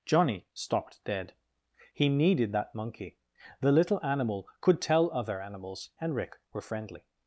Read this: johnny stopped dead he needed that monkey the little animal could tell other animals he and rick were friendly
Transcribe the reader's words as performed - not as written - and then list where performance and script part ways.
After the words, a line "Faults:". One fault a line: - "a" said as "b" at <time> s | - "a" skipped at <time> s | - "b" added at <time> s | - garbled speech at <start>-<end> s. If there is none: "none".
johnny stopped dead he needed that monkey the little animal could tell other animals and rick were friendly
Faults:
- "he" skipped at 5.9 s